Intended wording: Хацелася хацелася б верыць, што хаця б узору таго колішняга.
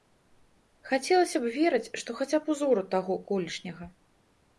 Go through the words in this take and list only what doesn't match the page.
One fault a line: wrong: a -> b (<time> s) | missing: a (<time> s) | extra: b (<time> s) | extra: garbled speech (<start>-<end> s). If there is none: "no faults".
missing: хацелася (1.4 s)